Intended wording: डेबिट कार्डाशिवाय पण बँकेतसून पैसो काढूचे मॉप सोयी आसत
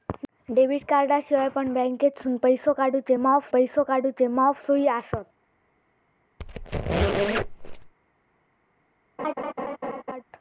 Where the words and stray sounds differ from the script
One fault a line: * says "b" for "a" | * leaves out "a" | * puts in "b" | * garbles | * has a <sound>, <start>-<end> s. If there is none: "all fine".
* puts in "पैसो काढूचे मॉप"
* has a squeak, 6.4-7.9 s
* has a laugh, 9.2-10.2 s